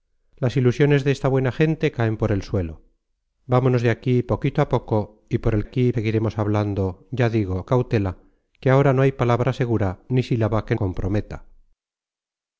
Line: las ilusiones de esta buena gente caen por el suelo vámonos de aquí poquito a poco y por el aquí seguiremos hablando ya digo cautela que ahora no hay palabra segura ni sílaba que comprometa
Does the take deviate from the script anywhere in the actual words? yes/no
no